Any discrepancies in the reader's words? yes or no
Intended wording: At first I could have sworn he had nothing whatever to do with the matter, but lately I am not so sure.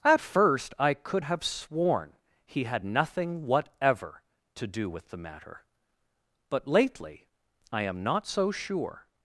no